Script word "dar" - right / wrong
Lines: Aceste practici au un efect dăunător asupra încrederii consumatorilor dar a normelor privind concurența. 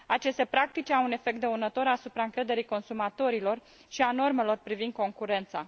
wrong